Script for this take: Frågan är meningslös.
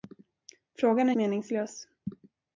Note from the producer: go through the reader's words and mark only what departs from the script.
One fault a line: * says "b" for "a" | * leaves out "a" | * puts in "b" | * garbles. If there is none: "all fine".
all fine